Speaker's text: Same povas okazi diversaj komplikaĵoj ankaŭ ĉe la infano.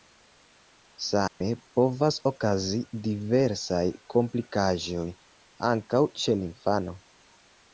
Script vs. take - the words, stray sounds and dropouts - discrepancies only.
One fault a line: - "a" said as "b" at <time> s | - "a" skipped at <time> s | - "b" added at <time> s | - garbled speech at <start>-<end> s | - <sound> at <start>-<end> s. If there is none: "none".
- dropout at 1.3-1.4 s